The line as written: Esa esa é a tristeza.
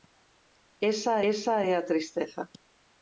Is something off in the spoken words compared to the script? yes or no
no